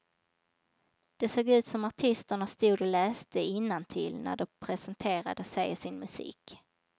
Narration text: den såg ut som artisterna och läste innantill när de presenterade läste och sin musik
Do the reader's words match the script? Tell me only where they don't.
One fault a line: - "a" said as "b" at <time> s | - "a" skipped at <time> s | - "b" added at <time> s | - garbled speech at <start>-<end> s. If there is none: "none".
- "den" said as "det" at 1.2 s
- "stod" added at 2.5 s
- "läste" said as "sig" at 5.4 s